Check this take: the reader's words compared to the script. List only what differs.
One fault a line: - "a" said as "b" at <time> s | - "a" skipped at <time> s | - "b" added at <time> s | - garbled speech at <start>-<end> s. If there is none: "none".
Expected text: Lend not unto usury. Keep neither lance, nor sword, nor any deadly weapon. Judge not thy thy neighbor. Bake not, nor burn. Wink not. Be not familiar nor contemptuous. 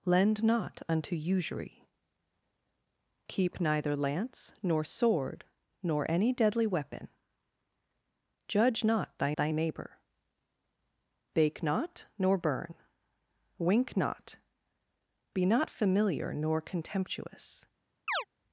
none